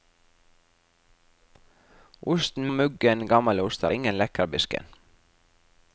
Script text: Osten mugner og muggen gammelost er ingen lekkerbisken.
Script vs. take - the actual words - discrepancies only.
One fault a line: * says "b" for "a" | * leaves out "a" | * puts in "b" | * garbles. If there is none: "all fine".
* leaves out "mugner"